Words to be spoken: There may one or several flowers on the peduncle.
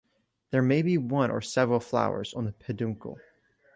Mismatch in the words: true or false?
true